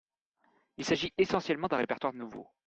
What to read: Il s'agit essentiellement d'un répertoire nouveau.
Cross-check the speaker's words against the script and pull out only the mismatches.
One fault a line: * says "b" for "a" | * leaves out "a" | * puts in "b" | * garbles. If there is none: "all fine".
all fine